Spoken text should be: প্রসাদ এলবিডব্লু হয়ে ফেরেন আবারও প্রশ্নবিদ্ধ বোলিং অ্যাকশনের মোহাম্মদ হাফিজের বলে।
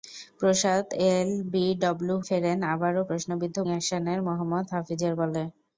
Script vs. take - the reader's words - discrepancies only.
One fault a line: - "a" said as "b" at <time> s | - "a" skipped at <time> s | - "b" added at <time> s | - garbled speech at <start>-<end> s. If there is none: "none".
- "হয়ে" skipped at 2.1 s
- "বোলিং" skipped at 3.6 s